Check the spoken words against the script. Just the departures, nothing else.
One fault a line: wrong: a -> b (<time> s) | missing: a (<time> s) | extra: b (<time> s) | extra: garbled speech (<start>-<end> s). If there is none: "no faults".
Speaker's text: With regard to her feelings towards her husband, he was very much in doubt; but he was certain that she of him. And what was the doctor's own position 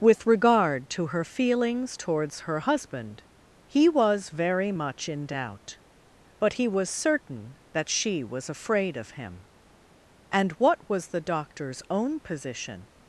extra: was afraid (8.2 s)